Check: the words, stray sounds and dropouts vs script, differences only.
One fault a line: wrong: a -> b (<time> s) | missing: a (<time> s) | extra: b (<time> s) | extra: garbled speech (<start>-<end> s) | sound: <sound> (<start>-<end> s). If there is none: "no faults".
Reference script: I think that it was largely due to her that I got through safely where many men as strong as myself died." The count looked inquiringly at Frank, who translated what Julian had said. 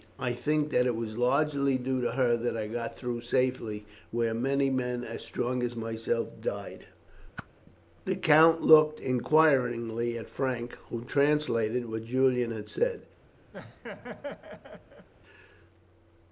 sound: whoosh (7.4-7.5 s)
sound: laugh (13.5-15.1 s)